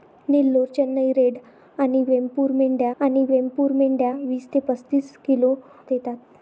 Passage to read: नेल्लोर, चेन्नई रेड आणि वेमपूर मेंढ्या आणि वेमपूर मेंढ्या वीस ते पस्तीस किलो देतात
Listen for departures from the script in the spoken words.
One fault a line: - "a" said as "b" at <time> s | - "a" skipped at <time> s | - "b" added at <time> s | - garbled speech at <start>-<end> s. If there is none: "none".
none